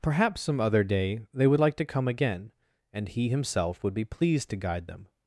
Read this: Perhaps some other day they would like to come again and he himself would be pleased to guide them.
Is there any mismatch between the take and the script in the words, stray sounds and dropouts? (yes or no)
no